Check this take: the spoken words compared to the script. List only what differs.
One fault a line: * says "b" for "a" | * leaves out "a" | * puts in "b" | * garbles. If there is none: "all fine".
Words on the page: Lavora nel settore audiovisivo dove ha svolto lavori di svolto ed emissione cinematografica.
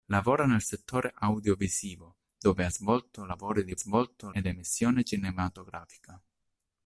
all fine